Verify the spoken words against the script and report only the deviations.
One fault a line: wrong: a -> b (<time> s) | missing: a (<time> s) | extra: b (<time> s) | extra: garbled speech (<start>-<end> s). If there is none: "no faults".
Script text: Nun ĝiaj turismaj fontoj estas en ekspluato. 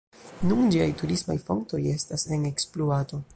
no faults